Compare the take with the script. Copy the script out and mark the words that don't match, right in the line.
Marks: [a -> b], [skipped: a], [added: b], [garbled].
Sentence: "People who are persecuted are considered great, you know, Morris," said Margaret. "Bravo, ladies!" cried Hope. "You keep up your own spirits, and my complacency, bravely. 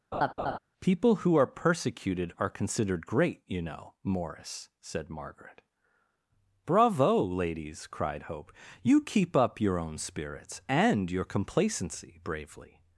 "People who are persecuted are considered great, you know, Morris," said Margaret. "Bravo, ladies!" cried Hope. "You keep up your own spirits, and [my -> your] complacency, bravely.